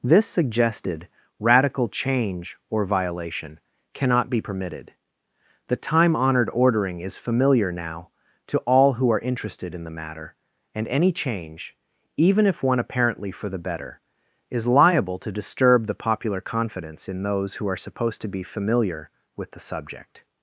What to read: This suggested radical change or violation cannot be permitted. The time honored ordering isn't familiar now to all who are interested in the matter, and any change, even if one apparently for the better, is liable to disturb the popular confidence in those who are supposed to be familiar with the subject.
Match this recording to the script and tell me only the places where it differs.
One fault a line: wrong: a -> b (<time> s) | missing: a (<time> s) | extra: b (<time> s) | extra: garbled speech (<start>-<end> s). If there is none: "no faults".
wrong: isn't -> is (7.0 s)